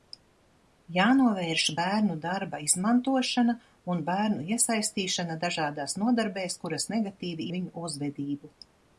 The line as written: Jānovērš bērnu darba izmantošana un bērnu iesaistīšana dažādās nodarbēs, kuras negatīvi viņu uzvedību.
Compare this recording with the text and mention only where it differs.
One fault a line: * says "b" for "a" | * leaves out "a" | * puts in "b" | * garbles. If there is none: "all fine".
all fine